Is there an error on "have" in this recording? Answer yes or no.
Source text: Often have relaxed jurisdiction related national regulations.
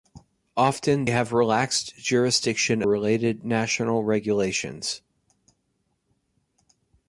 no